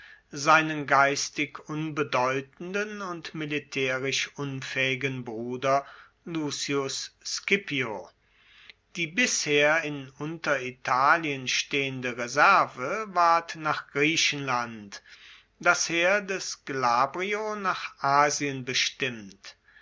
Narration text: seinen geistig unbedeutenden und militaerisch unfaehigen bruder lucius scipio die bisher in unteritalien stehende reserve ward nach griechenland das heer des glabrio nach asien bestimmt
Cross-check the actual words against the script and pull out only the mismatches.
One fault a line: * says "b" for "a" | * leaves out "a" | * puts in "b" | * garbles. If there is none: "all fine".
all fine